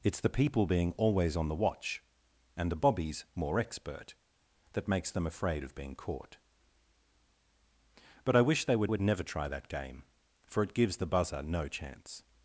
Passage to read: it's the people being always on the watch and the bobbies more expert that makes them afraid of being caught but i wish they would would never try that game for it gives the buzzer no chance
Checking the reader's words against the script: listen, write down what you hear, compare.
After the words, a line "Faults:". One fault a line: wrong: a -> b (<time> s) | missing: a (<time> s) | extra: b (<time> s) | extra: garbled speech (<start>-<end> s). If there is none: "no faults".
it's the people being always on the watch and the bobbies more expert that makes them afraid of being caught but i wish they would would never try that game for it gives the buzzer no chance
Faults:
no faults